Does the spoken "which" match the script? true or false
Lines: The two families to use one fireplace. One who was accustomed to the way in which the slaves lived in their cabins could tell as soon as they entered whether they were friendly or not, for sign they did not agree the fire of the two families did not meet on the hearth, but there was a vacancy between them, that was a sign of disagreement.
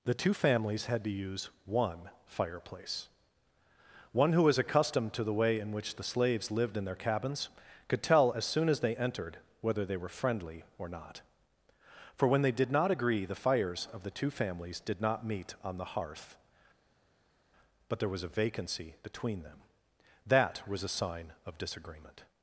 true